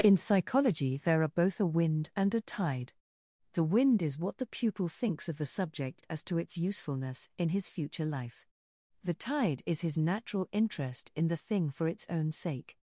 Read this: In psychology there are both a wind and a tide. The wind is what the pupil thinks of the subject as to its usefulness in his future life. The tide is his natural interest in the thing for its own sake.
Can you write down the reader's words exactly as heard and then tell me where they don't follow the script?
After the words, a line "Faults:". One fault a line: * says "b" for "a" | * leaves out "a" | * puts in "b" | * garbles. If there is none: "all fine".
In psychology there are both a wind and a tide. The wind is what the pupil thinks of the subject as to its usefulness in his future life. The tide is his natural interest in the thing for its own sake.
Faults:
all fine